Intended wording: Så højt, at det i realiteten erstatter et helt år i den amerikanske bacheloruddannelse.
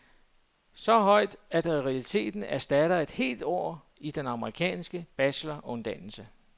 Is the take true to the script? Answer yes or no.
yes